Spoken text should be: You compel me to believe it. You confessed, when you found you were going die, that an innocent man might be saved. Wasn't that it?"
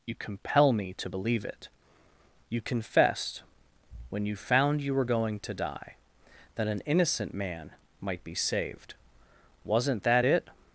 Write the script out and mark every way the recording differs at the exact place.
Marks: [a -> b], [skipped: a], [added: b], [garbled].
You compel me to believe it. You confessed, when you found you were going [added: to] die, that an innocent man might be saved. Wasn't that it?"